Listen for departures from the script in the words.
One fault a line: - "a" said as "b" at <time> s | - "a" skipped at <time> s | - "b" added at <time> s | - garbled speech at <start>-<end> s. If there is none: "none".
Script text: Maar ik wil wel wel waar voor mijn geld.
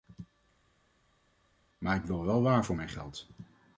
- "wel" skipped at 2.4 s